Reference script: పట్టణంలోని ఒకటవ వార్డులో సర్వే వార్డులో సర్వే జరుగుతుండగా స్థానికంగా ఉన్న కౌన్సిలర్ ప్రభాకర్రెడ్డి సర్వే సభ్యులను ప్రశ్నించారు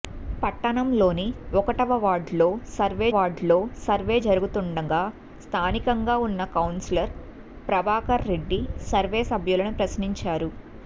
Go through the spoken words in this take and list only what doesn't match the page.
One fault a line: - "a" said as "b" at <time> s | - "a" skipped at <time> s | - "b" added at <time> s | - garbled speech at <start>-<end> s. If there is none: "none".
none